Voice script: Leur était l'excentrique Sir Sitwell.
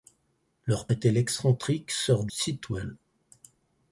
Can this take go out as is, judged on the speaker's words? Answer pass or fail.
pass